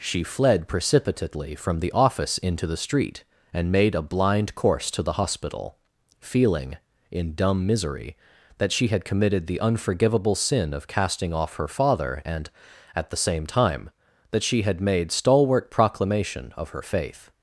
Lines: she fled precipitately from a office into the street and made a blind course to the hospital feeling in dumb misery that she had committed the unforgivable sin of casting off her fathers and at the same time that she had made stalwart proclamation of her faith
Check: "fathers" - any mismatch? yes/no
yes